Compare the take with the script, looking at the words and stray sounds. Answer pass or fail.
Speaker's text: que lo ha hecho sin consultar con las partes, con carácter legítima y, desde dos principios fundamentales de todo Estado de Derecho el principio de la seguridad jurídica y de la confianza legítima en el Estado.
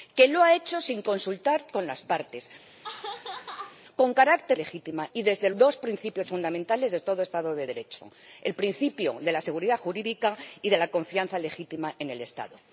fail